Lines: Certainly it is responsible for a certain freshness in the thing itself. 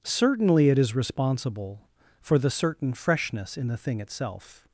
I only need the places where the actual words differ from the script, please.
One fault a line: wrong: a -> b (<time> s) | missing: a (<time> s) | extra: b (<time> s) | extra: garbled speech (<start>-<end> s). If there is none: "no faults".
wrong: a -> the (2.4 s)